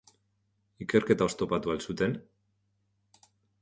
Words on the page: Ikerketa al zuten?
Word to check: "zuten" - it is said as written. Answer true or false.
true